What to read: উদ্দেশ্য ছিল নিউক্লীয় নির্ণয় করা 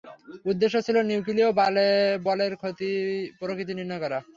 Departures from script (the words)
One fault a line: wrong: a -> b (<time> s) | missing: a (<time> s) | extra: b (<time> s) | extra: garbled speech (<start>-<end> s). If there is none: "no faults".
extra: বলের প্রকৃতি (2.3 s)